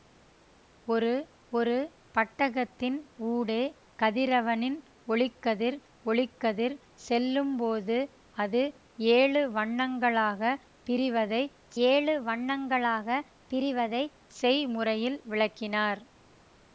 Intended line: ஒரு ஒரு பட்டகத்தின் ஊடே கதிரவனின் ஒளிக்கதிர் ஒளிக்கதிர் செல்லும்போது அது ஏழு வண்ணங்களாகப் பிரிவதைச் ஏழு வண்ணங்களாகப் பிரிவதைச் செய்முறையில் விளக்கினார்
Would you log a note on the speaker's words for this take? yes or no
no